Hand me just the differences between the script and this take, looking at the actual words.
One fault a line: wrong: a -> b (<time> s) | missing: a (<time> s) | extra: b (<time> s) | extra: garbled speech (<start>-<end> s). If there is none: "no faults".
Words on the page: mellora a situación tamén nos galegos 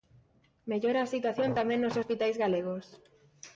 extra: hospitais (2.0 s)